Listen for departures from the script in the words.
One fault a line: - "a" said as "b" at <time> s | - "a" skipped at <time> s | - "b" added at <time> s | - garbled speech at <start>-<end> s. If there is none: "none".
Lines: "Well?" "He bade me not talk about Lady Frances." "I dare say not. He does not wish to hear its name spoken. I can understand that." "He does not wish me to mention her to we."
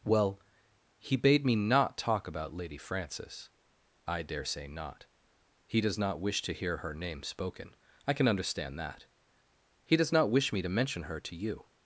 - "its" said as "her" at 6.8 s
- "we" said as "you" at 11.3 s